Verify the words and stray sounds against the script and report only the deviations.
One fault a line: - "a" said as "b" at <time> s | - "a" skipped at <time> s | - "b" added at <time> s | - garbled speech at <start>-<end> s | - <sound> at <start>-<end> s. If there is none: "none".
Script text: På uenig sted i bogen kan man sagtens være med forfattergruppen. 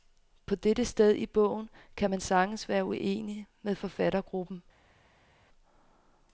- "uenig" said as "dette" at 0.6 s
- "uenig" added at 2.8 s